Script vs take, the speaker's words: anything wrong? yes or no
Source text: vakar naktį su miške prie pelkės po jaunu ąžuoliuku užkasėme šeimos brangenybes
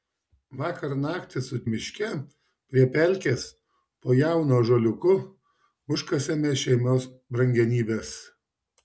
no